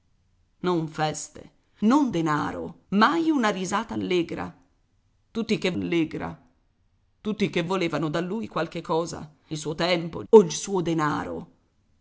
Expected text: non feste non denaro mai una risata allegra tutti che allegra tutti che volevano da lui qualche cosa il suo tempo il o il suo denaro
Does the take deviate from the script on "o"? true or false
false